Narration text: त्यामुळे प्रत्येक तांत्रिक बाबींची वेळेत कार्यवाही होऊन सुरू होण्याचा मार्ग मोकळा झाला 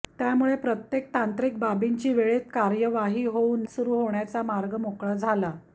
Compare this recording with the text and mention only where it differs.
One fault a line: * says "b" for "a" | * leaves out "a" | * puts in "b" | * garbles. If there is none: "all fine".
all fine